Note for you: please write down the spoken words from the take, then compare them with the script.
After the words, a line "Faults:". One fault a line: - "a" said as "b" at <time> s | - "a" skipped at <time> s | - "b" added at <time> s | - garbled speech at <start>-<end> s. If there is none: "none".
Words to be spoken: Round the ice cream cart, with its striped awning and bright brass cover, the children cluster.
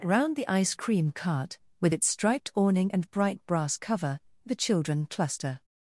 Round the ice cream cart, with its striped awning and bright brass cover, the children cluster.
Faults:
none